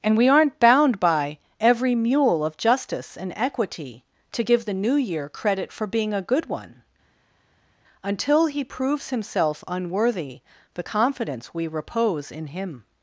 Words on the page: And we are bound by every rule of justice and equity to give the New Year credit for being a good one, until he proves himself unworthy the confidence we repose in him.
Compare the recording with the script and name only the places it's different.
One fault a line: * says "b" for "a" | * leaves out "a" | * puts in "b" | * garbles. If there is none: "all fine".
* says "aren't" for "are"
* says "mule" for "rule"